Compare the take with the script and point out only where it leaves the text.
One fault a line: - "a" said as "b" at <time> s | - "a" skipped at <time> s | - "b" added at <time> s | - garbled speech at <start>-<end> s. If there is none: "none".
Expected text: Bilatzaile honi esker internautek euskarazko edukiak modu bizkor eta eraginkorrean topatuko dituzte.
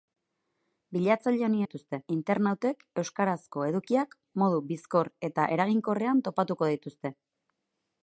- "esker" said as "dituzte" at 1.6 s